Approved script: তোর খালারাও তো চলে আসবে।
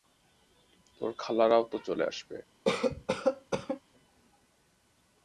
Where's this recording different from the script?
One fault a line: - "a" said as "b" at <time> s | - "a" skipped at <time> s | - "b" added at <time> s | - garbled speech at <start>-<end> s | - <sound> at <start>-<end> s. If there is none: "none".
- cough at 2.7-3.8 s